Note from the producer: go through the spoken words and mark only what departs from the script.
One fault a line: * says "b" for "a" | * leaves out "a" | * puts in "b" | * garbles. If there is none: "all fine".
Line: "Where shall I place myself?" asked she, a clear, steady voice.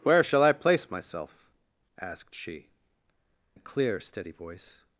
all fine